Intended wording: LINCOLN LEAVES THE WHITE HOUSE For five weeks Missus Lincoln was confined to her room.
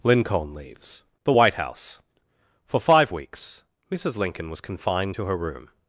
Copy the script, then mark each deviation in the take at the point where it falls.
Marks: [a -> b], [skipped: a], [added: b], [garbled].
LINCOLN LEAVES THE WHITE HOUSE For five weeks Missus Lincoln was confined to her room.